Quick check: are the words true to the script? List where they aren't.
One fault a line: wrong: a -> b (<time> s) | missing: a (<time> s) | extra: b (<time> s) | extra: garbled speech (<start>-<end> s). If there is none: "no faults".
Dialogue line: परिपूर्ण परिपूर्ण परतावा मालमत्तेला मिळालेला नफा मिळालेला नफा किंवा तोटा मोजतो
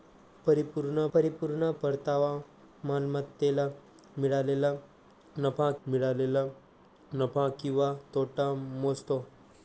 no faults